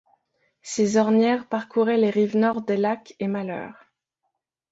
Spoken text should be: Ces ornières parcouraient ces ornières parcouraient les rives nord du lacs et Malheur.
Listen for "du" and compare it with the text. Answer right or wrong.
wrong